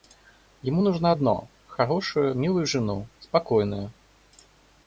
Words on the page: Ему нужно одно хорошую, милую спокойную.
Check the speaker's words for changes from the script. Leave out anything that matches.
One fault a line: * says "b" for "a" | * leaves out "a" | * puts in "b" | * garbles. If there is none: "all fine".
* puts in "жену"